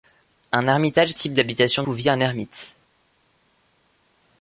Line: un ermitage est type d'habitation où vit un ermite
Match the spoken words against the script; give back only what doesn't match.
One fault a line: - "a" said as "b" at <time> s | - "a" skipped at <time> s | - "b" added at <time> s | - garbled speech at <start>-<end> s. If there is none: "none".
none